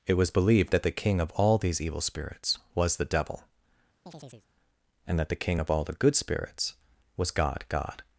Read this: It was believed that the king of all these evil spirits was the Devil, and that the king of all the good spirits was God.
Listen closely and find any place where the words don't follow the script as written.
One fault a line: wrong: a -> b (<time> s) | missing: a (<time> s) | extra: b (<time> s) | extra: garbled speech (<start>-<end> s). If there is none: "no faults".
extra: God (7.7 s)